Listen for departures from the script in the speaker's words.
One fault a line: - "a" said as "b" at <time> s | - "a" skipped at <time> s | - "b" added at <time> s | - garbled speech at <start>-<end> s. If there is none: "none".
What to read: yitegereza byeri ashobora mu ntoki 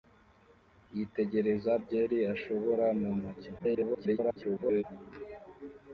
- garbled speech at 3.6-4.8 s